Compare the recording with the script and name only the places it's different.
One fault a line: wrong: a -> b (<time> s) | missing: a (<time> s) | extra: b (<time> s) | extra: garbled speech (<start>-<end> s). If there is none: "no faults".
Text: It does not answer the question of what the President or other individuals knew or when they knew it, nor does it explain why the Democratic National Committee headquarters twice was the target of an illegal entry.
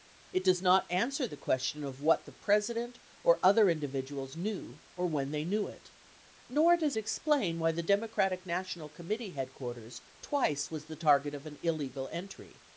missing: it (7.0 s)